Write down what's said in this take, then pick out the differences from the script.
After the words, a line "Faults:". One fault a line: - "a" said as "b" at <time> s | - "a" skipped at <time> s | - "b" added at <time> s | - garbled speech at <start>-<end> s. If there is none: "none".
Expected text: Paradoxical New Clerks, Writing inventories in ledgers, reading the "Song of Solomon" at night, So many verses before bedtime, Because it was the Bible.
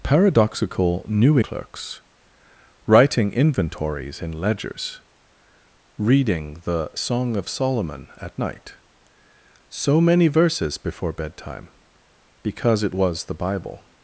Paradoxical New Clerks, Writing inventories in ledgers, reading the "Song of Solomon" at night, So many verses before bedtime, Because it was the Bible.
Faults:
none